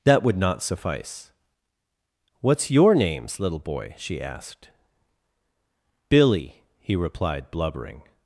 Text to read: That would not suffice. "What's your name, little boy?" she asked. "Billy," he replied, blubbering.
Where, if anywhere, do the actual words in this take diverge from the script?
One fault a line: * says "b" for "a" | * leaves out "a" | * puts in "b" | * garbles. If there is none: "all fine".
* says "names" for "name"